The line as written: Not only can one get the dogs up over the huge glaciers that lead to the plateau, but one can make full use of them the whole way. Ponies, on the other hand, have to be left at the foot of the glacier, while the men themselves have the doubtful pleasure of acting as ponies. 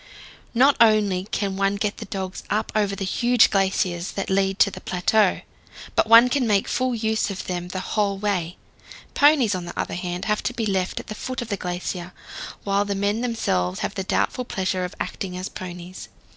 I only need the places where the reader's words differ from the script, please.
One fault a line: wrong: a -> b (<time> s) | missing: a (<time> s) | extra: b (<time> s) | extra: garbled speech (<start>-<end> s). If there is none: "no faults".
no faults